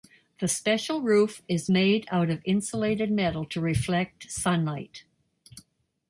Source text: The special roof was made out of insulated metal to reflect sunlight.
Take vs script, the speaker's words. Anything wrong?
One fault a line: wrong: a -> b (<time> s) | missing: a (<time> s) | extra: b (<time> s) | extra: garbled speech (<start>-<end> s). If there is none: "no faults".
wrong: was -> is (1.5 s)